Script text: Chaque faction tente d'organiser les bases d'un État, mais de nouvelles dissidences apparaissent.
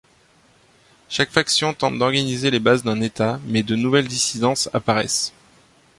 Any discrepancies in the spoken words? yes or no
no